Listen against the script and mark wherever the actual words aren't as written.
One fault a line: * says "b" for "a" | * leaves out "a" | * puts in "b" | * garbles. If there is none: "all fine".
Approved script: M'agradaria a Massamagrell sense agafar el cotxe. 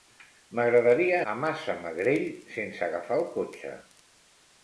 all fine